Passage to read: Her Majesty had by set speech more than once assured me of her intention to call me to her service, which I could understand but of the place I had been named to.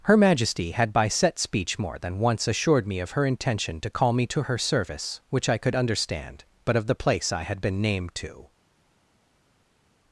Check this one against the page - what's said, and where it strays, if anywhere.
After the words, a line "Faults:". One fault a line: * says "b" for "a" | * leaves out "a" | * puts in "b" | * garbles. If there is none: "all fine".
Her Majesty had by set speech more than once assured me of her intention to call me to her service, which I could understand but of the place I had been named to.
Faults:
all fine